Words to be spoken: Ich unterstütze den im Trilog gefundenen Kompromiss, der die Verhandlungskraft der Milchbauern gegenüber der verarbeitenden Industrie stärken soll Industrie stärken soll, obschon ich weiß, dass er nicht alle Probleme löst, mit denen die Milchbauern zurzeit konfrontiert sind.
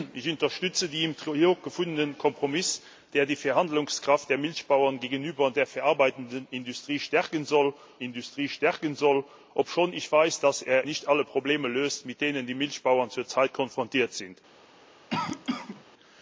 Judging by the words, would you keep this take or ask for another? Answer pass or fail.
pass